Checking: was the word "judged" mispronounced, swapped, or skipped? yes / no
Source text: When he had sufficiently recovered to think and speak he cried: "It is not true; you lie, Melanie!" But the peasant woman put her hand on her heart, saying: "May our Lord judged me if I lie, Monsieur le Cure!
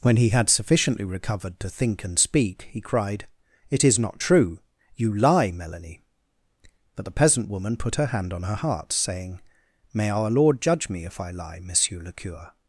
yes